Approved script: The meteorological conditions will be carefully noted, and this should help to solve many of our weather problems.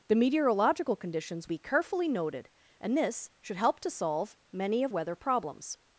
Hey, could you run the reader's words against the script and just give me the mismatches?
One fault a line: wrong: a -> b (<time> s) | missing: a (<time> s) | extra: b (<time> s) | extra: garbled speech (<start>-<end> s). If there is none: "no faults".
missing: will (1.5 s)
missing: our (4.9 s)